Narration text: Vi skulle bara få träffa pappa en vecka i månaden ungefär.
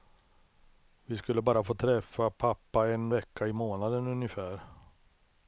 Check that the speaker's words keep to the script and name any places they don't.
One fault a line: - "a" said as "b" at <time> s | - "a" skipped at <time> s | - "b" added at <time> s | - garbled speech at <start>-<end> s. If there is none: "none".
none